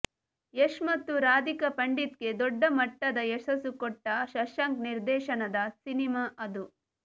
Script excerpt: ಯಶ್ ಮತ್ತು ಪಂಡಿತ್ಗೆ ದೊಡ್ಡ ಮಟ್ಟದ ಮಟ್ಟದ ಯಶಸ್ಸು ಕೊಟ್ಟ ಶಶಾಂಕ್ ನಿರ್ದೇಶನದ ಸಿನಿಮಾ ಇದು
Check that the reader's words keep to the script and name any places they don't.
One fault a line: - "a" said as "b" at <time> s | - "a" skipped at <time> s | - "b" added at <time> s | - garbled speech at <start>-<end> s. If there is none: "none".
- "ರಾಧಿಕಾ" added at 1.2 s
- "ಮಟ್ಟದ" skipped at 3.2 s
- "ಇದು" said as "ಅದು" at 6.4 s